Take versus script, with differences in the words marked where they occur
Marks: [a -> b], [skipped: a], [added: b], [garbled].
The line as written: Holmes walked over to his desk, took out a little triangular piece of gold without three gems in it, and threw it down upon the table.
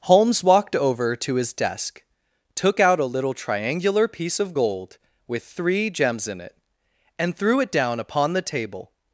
Holmes walked over to his desk, took out a little triangular piece of gold [without -> with] three gems in it, and threw it down upon the table.